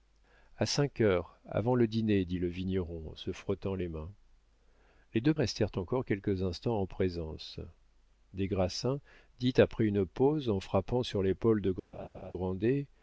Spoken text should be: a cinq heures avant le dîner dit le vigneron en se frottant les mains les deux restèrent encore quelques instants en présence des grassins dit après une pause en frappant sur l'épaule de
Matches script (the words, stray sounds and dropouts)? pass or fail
fail